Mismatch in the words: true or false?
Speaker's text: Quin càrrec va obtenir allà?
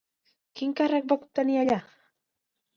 false